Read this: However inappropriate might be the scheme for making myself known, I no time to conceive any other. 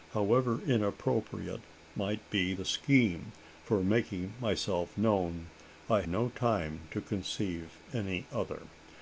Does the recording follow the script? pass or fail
pass